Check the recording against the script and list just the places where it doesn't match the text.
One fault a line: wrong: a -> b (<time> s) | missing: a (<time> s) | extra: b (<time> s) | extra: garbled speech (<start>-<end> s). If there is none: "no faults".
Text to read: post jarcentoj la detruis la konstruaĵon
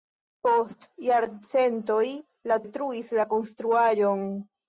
no faults